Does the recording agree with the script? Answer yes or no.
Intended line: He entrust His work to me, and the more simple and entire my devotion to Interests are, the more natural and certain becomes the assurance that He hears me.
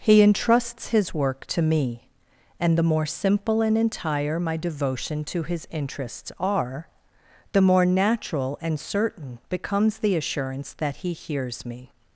no